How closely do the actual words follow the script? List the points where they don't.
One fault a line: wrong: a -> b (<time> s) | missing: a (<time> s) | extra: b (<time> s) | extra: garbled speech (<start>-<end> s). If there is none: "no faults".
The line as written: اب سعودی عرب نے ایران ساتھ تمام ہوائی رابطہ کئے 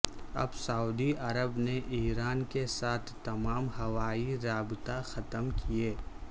extra: کے (2.5 s)
extra: ختم (5.1 s)